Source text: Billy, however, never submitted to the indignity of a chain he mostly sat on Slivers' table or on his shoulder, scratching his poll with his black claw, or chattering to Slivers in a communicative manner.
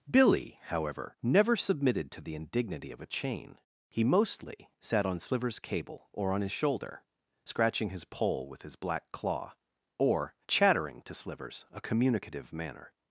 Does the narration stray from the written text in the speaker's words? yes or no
yes